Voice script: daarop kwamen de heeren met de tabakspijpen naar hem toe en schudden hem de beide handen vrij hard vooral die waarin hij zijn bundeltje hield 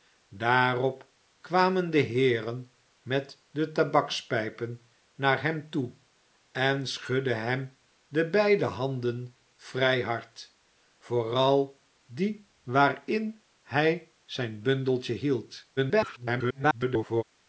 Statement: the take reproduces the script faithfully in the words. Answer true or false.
false